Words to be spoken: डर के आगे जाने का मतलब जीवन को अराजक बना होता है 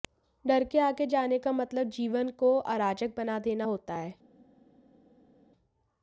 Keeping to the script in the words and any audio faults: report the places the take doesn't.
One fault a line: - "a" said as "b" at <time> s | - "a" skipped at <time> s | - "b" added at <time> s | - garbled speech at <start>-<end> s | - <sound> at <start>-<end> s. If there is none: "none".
- "देना" added at 3.4 s